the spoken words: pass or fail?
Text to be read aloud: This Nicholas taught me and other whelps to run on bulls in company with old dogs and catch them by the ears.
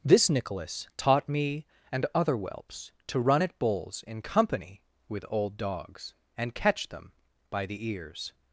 fail